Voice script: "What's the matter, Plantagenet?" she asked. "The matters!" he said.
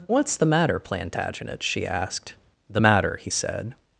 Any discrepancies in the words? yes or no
yes